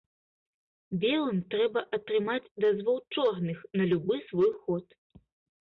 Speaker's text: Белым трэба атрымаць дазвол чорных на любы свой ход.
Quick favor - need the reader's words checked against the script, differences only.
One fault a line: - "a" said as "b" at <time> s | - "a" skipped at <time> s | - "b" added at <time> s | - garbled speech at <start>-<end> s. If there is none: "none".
none